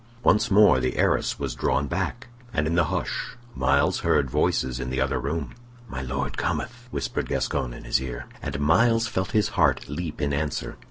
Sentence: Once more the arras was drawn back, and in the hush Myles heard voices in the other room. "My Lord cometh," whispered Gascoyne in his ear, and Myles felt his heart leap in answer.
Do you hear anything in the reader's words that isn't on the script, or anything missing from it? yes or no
no